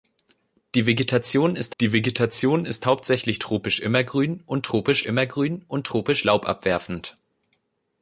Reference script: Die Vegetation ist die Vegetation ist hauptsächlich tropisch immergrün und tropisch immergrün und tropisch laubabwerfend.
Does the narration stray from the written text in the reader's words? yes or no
no